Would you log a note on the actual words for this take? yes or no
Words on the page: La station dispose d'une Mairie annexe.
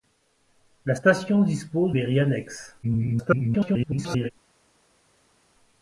yes